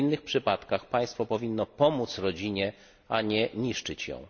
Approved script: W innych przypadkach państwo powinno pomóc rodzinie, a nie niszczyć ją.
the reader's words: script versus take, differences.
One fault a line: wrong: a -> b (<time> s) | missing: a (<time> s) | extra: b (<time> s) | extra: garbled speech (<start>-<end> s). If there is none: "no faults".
no faults